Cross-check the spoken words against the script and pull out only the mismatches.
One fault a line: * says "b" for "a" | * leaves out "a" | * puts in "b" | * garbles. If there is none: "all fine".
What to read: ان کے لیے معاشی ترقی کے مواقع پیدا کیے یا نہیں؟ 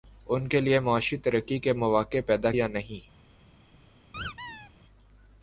* leaves out "کیے"